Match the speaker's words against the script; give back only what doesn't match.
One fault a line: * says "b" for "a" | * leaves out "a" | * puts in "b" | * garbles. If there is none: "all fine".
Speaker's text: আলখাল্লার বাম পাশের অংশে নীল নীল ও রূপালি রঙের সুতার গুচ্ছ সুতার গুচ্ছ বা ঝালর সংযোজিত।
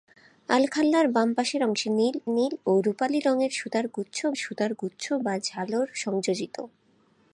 all fine